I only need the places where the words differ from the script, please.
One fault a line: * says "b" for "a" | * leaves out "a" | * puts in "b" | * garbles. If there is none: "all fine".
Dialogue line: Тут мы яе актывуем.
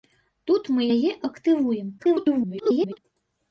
* garbles